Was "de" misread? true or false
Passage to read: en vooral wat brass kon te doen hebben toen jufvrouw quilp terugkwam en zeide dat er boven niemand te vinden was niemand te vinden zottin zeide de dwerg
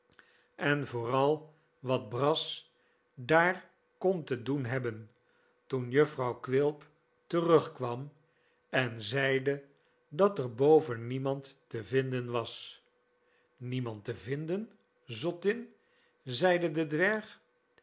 false